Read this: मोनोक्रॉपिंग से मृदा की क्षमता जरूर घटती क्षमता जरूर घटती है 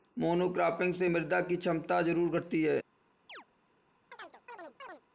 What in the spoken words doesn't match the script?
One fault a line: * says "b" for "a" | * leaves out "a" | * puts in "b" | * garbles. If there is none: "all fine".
* leaves out "क्षमता जरूर घटती"